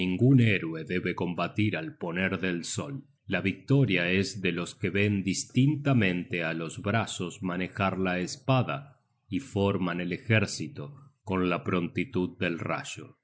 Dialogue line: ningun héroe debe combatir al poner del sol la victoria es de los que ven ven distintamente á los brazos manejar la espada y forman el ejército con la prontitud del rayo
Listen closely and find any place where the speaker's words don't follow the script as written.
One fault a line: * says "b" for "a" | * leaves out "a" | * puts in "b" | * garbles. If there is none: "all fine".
* leaves out "ven"